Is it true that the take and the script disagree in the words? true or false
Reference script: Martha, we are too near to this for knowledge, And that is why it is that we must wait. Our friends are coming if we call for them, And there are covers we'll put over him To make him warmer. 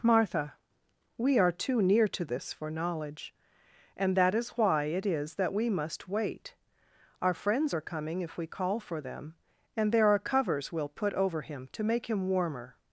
false